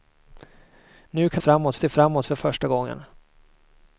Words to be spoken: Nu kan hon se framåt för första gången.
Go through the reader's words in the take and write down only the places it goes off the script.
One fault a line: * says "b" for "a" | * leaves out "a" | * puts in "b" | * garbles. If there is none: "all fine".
* says "framåt" for "hon"